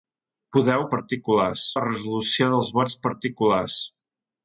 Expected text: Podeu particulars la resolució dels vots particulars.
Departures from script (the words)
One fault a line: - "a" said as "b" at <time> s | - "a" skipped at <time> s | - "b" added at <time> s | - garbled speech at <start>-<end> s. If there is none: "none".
none